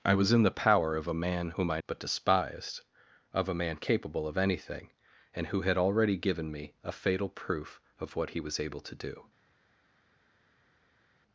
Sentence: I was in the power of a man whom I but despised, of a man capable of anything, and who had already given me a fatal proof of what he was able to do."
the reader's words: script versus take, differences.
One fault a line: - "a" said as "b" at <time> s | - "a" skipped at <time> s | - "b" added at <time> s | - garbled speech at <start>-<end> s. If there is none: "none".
none